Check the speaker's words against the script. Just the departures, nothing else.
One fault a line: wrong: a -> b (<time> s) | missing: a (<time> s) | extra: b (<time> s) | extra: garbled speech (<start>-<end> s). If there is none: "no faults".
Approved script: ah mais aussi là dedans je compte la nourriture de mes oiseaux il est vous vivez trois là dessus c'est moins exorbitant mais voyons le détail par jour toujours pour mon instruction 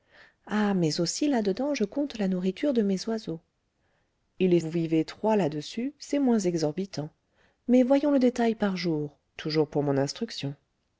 no faults